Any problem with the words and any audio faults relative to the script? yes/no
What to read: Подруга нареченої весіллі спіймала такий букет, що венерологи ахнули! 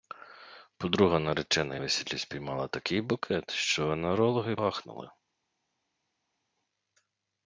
no